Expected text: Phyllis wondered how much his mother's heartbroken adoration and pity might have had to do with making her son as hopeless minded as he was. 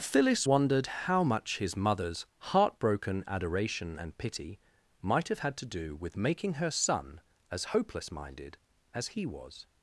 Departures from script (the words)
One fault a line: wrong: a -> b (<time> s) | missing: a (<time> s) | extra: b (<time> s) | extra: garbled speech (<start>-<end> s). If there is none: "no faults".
no faults